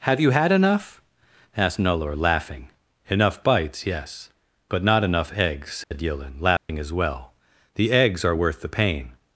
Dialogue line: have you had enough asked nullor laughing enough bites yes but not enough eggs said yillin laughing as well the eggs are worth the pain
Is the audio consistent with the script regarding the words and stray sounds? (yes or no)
no